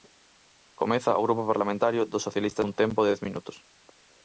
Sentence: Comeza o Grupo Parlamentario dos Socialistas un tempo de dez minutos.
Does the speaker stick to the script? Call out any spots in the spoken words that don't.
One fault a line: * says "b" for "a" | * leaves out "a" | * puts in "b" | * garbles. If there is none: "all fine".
all fine